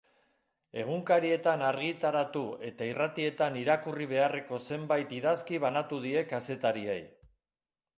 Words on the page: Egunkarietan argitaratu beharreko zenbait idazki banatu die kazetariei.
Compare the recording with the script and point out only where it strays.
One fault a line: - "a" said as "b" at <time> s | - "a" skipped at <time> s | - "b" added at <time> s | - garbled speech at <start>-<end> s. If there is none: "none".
- "eta irratietan irakurri" added at 2.7 s